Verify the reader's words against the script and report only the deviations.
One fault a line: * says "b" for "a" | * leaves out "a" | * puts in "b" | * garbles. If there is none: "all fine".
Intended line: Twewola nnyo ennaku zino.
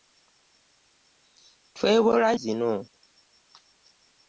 * leaves out "nnyo ennaku"